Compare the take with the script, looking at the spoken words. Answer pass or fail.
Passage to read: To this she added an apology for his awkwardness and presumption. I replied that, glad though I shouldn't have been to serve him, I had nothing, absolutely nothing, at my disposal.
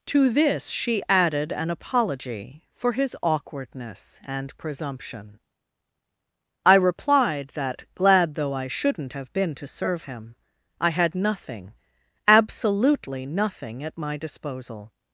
pass